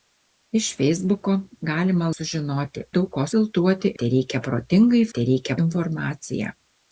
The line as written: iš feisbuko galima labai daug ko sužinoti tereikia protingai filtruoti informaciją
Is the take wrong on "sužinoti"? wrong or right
wrong